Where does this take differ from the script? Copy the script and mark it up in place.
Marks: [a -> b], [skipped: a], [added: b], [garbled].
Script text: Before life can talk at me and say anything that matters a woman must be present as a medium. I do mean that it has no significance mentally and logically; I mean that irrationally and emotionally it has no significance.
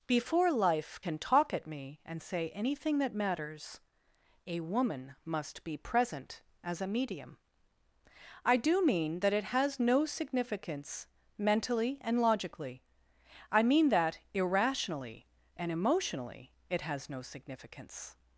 Before life can talk at me and say anything that matters a woman must be present as a medium. I do mean that it has no significance mentally and logically; I mean that irrationally and emotionally it has no significance.